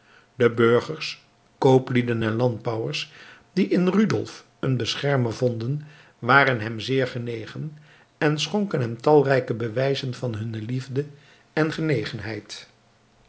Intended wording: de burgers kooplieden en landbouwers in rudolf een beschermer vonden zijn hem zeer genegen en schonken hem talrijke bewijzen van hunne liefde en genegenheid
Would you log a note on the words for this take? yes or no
yes